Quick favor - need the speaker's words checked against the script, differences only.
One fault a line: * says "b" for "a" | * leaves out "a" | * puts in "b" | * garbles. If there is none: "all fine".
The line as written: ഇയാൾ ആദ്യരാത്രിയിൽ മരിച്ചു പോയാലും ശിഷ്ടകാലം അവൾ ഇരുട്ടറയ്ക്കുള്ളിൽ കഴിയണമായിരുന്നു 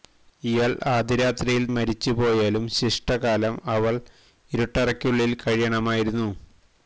all fine